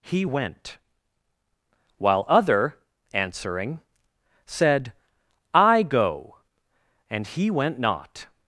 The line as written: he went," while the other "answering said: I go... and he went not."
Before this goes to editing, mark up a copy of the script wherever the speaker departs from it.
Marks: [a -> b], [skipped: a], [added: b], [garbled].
he went," while [skipped: the] other "answering said: I go... and he went not."